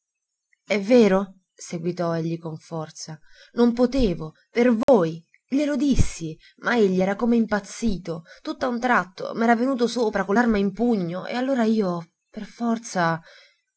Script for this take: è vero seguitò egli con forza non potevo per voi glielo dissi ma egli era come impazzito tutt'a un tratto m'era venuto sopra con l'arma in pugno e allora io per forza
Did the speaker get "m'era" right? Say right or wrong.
right